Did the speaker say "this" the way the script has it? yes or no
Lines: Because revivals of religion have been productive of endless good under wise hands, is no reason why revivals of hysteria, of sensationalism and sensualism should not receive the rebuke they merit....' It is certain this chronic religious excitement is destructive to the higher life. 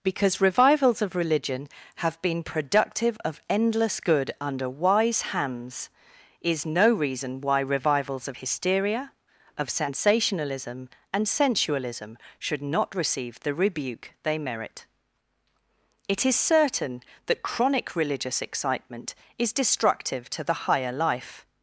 no